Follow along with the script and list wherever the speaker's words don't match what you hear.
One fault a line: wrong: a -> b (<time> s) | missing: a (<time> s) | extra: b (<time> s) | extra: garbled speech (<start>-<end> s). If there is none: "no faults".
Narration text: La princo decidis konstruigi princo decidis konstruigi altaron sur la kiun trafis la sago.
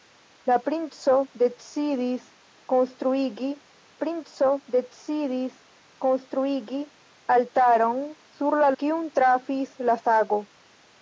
no faults